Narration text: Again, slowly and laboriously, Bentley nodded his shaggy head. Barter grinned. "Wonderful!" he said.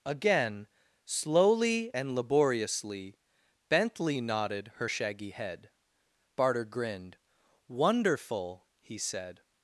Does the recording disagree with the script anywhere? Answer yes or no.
yes